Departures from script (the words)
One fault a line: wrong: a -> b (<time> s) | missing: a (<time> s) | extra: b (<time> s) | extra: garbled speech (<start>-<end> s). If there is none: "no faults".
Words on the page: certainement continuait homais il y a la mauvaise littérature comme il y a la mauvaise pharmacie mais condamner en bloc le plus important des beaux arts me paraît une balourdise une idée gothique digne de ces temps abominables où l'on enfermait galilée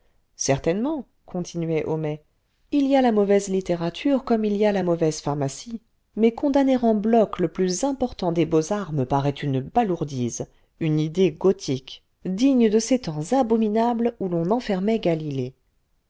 no faults